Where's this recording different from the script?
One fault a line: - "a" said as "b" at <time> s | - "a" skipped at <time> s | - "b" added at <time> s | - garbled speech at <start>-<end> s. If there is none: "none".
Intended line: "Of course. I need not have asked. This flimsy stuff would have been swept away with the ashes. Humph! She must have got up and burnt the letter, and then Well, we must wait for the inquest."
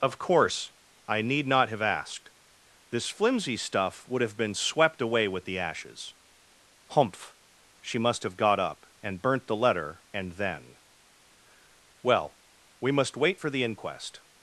none